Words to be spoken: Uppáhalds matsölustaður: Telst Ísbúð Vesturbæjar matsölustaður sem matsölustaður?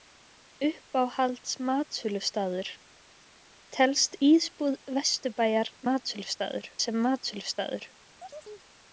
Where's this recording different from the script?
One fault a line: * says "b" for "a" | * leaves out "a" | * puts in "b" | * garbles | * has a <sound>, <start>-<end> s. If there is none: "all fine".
* has a chirp, 8.2-8.7 s